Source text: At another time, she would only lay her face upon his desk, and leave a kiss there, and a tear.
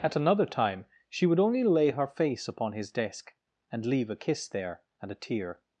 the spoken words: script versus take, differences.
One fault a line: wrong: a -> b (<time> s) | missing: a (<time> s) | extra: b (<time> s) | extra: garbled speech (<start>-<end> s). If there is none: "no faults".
no faults